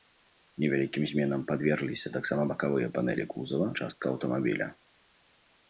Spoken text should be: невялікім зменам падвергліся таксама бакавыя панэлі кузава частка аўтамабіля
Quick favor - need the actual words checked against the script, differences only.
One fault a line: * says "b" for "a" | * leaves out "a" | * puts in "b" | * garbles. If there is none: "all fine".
all fine